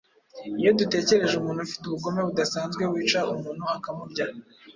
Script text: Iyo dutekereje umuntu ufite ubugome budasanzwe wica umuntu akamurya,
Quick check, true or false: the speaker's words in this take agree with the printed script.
true